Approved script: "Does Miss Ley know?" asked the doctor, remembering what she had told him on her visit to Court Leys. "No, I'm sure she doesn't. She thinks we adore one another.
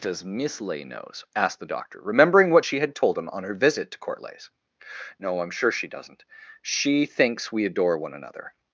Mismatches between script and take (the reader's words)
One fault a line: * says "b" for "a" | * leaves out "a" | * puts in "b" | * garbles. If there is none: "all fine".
* says "knows" for "know"